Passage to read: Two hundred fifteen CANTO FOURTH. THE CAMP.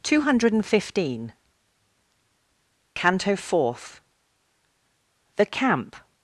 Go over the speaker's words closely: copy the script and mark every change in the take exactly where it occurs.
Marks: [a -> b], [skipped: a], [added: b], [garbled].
Two hundred fifteen CANTO FOURTH. THE CAMP.